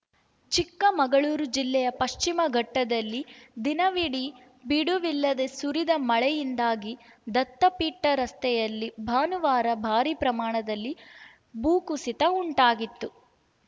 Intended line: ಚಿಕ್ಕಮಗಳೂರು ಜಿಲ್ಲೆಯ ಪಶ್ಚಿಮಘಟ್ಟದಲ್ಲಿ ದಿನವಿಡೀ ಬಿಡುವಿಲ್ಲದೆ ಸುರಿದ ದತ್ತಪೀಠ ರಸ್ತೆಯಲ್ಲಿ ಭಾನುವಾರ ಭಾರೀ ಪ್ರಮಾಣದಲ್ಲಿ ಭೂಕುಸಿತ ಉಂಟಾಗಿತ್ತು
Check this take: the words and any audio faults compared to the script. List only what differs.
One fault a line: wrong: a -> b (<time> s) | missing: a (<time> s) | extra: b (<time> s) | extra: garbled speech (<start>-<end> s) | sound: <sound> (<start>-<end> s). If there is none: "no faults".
extra: ಮಳೆಯಿಂದಾಗಿ (6.1 s)